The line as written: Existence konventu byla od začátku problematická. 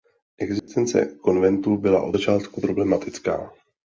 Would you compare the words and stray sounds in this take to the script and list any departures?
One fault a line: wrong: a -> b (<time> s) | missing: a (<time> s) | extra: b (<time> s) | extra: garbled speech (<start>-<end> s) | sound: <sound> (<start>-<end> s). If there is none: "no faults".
sound: dropout (0.6-0.7 s)